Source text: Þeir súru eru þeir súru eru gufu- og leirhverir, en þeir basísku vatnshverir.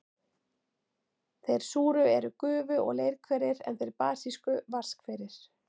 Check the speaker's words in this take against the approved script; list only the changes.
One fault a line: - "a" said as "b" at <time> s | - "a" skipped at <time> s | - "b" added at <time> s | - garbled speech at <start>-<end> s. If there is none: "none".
- "þeir súru eru" skipped at 2.3 s